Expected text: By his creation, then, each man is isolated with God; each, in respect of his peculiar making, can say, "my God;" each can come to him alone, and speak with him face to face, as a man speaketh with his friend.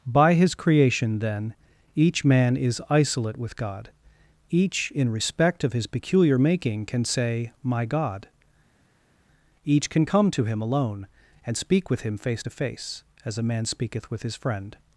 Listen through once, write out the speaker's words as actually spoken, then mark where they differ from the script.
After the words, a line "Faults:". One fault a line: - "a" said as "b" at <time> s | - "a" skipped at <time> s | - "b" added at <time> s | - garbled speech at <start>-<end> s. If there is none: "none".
By his creation, then, each man is isolate with God; each, in respect of his peculiar making, can say, "my God;" each can come to him alone, and speak with him face to face, as a man speaketh with his friend.
Faults:
- "isolated" said as "isolate" at 2.9 s